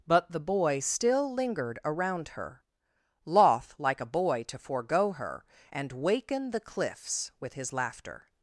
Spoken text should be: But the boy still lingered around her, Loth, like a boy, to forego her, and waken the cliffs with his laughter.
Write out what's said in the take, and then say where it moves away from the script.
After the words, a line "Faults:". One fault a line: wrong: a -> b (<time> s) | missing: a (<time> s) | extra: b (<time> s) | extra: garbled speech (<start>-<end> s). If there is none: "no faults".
But the boy still lingered around her, Loth, like a boy, to forego her, and waken the cliffs with his laughter.
Faults:
no faults